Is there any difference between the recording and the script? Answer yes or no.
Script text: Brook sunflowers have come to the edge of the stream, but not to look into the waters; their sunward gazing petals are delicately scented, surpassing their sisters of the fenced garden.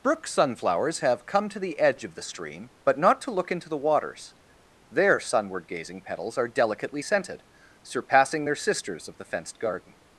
no